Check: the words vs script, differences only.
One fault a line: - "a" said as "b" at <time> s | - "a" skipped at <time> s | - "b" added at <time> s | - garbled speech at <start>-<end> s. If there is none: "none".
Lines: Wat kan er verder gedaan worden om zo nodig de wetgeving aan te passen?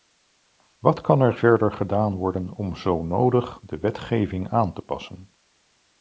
none